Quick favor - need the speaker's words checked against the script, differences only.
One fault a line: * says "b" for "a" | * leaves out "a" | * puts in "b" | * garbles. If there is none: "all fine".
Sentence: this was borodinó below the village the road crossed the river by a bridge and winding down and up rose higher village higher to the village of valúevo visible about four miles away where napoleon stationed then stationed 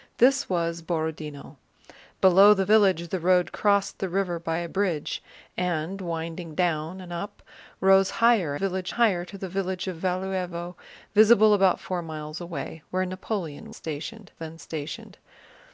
all fine